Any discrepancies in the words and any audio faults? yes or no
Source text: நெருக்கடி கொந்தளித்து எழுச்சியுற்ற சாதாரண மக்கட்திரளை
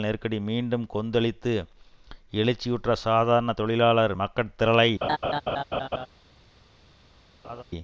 yes